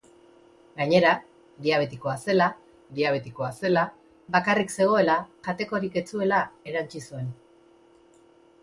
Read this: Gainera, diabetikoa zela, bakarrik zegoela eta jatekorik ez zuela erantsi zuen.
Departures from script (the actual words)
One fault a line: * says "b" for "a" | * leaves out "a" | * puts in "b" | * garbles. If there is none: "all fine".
* puts in "diabetikoa zela"
* leaves out "eta"